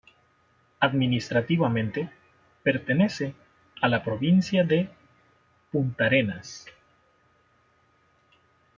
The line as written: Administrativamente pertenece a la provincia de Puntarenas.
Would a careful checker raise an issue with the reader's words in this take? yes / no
no